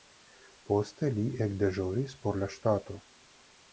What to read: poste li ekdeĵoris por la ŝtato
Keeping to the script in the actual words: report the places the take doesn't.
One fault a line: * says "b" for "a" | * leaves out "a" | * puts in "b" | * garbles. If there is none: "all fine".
all fine